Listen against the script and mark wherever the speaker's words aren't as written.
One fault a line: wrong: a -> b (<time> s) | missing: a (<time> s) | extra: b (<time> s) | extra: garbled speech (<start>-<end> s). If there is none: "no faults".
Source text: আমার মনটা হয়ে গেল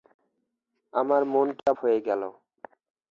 no faults